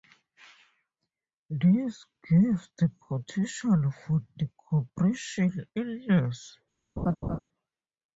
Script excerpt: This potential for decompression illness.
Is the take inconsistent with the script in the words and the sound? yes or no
yes